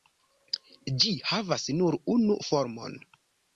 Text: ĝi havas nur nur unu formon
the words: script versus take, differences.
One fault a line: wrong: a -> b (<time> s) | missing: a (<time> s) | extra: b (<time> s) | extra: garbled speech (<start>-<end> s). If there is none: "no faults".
missing: nur (2.0 s)